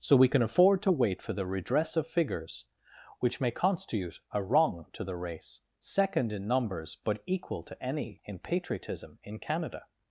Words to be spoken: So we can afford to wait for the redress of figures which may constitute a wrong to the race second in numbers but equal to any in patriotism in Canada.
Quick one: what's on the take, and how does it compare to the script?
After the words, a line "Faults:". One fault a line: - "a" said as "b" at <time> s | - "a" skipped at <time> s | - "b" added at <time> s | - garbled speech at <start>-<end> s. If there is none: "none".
So we can afford to wait for the redress of figures which may constitute a wrong to the race second in numbers but equal to any in patriotism in Canada.
Faults:
none